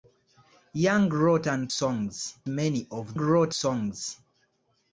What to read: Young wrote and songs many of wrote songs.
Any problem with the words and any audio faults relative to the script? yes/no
no